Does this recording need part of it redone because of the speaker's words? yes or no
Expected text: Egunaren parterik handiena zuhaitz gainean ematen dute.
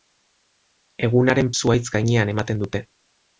yes